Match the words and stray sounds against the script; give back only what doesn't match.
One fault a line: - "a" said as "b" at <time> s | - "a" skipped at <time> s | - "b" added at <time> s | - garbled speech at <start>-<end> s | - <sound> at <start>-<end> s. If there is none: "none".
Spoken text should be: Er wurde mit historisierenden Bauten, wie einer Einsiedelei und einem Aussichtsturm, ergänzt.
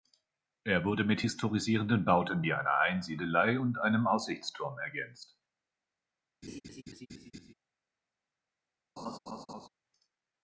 - laugh at 6.4-7.5 s
- laugh at 9.0-9.7 s